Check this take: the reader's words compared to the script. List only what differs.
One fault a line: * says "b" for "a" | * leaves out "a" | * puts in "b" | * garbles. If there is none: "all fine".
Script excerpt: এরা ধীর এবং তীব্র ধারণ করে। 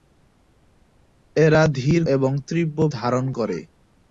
all fine